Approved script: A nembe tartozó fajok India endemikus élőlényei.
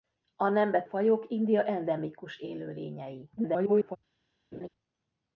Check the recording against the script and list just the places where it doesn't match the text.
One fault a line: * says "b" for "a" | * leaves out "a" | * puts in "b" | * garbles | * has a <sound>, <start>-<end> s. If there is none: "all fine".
* leaves out "tartozó"
* garbles
* has a laugh, 4.5-4.7 s